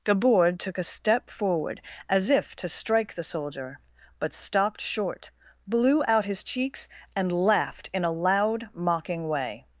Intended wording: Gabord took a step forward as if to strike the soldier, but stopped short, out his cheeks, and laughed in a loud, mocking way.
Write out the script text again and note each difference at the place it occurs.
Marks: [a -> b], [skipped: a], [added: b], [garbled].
Gabord took a step forward as if to strike the soldier, but stopped short, [added: blew] out his cheeks, and laughed in a loud, mocking way.